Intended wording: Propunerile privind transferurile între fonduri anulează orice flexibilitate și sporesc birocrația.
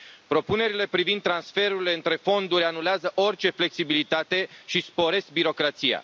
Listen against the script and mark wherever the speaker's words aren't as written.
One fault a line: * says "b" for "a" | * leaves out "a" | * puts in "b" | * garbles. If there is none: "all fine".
all fine